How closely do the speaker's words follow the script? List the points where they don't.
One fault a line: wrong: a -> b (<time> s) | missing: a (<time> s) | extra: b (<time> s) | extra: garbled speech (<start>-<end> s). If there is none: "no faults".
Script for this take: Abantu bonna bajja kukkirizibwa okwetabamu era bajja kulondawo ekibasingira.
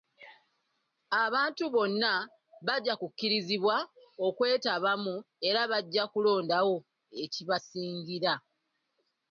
no faults